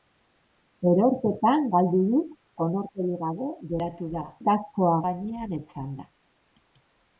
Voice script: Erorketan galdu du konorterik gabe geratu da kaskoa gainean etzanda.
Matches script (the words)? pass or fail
pass